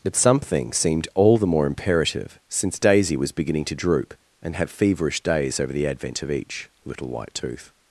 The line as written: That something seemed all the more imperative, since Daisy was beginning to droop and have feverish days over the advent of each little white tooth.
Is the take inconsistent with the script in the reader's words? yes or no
yes